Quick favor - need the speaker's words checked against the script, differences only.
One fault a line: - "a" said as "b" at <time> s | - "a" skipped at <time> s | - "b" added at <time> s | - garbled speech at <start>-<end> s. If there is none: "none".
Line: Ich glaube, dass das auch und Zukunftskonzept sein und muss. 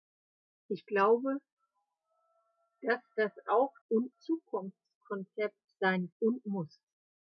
none